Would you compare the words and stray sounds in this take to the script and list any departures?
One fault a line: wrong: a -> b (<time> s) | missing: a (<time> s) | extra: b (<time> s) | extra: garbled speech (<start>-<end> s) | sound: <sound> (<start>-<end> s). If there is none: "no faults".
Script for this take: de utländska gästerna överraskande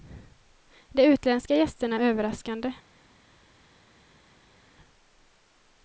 no faults